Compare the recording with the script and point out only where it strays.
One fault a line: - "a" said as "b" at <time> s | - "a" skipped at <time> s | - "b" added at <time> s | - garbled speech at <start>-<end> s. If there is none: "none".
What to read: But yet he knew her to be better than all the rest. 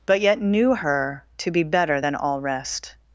- "he" skipped at 0.4 s
- "the" skipped at 2.4 s